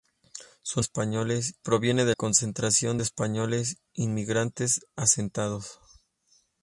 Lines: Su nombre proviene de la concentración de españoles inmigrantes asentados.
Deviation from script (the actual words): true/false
true